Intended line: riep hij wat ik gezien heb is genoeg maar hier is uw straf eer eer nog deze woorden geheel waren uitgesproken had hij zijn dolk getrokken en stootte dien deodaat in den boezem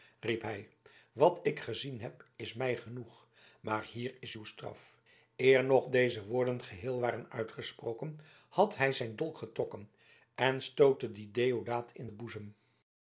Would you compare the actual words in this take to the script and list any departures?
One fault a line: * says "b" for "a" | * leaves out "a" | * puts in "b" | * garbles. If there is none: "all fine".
* puts in "mij"
* leaves out "eer"